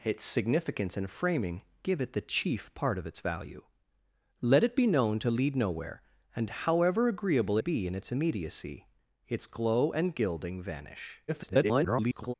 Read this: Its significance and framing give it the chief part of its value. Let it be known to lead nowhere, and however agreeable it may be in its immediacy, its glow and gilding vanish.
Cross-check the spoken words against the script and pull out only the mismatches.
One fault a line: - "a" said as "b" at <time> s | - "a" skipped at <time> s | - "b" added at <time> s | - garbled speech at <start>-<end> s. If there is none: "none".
- "it may" skipped at 7.6 s
- garbled speech at 11.3-12.3 s